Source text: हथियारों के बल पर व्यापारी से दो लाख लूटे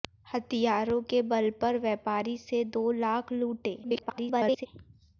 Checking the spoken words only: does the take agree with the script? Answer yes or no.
no